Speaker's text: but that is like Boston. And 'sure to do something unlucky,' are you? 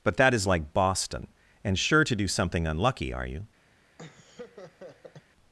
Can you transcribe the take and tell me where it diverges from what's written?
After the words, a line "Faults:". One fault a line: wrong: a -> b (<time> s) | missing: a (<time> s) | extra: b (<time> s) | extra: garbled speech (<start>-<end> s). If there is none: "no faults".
but that is like Boston. And 'sure to do something unlucky,' are you?
Faults:
no faults